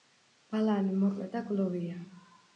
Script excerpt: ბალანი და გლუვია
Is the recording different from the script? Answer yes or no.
yes